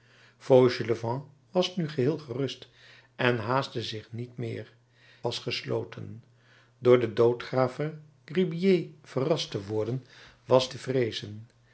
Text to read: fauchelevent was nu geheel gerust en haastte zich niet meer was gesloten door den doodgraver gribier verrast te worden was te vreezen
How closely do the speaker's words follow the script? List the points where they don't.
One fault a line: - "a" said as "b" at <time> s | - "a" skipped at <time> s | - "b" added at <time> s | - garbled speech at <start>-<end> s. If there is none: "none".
none